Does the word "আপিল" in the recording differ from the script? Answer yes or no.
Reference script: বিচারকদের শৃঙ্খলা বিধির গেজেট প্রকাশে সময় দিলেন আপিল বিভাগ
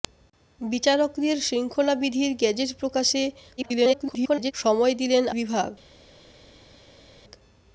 yes